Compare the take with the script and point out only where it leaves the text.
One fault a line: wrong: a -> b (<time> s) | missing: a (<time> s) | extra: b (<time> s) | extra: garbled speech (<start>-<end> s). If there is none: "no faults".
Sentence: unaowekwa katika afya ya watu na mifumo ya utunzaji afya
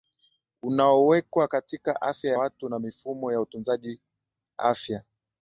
missing: ya (2.3 s)